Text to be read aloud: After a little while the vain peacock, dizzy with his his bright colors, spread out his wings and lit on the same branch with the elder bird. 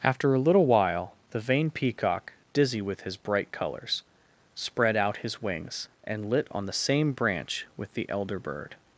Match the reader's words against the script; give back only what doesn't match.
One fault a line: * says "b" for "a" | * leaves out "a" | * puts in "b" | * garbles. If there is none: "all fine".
* leaves out "his"